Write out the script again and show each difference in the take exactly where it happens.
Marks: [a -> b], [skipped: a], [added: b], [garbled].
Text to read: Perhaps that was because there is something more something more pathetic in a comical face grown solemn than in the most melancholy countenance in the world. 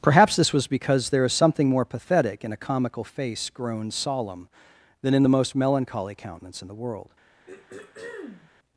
Perhaps [that -> this] was because there is something more [skipped: something more] pathetic in a comical face grown solemn than in the most melancholy countenance in the world.